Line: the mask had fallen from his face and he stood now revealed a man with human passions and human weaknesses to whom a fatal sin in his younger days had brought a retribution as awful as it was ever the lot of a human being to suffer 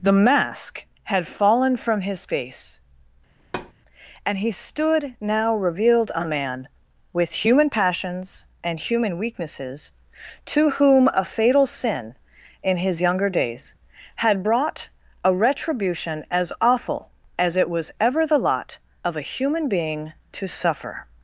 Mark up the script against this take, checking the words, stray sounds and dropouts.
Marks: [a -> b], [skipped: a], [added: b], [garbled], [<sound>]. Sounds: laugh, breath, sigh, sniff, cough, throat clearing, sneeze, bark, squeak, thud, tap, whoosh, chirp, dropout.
the mask had fallen from his face [thud] and he stood now revealed a man with human passions and human weaknesses to whom a fatal sin in his younger days had brought a retribution as awful as it was ever the lot of a human being to suffer